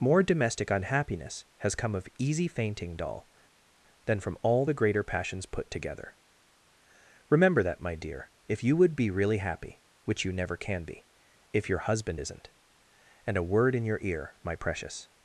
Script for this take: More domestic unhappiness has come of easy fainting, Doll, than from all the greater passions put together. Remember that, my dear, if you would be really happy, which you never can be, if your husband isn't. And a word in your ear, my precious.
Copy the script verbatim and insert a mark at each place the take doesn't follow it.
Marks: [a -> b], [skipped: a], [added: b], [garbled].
More domestic unhappiness has come of easy fainting, Doll, than from all the greater passions put together. Remember that, my dear, if you would be really happy, which you never can be, if your husband isn't. And a word in your ear, my precious.